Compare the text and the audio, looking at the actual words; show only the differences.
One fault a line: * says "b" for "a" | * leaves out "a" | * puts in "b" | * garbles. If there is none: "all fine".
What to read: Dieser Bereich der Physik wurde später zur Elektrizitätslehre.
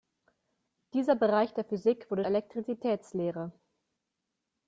* leaves out "später zur"